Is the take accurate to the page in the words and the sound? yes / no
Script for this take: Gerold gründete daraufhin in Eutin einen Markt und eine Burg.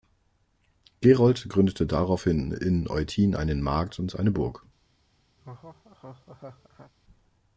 no